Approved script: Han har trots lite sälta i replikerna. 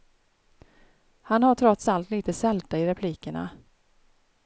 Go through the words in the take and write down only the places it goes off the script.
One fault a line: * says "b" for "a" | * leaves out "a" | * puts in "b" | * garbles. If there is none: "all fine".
* puts in "allt"